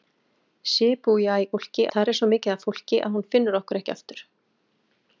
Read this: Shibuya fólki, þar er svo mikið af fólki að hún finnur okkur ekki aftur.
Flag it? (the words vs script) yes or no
no